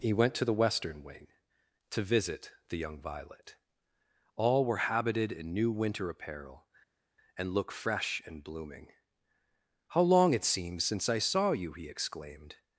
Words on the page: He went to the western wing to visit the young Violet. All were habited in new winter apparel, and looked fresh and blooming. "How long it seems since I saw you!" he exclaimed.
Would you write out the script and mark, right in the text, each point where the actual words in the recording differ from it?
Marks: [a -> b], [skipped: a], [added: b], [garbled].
He went to the western wing to visit the young Violet. All were habited in new winter apparel, and [looked -> look] fresh and blooming. "How long it seems since I saw you!" he exclaimed.